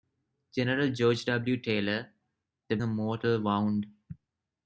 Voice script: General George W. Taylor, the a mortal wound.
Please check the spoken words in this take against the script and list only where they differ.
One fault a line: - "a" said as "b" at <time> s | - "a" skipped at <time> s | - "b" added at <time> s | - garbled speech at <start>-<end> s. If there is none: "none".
none